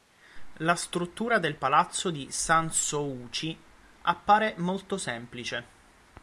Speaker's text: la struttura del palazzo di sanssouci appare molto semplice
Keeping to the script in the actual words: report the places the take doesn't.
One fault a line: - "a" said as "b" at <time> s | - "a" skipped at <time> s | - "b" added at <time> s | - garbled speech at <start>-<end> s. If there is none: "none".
none